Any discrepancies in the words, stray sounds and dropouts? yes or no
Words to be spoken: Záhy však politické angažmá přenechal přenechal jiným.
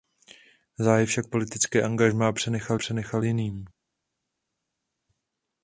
no